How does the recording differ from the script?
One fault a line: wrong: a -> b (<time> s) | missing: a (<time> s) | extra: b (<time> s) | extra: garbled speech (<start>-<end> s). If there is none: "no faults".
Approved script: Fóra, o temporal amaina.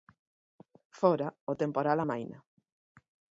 no faults